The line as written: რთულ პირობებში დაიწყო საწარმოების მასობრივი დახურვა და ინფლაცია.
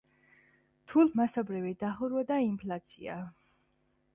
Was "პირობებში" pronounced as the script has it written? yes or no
no